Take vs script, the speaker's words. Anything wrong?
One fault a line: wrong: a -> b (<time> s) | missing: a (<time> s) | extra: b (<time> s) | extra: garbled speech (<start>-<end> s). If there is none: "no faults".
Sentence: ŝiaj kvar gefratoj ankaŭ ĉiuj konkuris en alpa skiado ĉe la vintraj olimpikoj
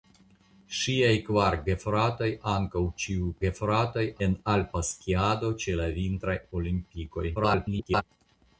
wrong: konkuris -> gefratoj (3.4 s)
extra: garbled speech (7.3-8.0 s)